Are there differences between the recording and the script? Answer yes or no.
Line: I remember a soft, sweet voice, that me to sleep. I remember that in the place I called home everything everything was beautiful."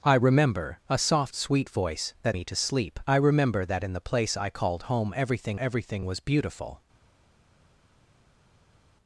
no